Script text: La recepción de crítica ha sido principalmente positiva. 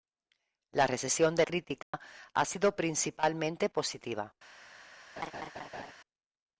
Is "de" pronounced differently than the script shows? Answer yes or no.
no